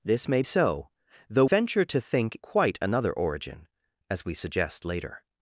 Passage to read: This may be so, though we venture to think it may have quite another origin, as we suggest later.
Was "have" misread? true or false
true